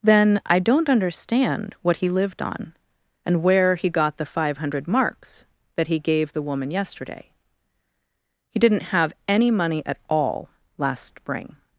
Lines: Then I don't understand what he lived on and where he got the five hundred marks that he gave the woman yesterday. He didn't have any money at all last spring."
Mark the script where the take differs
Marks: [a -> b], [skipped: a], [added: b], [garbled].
Then I don't understand what he lived on and where he got the five hundred marks that he gave the woman yesterday. He didn't have any money at all last spring."